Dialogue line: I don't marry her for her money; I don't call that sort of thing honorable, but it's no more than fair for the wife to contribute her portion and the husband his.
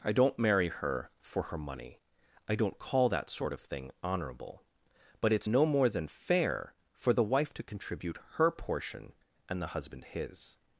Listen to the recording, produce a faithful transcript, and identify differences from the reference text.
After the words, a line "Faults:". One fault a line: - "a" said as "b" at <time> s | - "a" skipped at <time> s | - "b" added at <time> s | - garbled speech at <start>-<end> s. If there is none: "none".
I don't marry her for her money; I don't call that sort of thing honorable, but it's no more than fair for the wife to contribute her portion and the husband his.
Faults:
none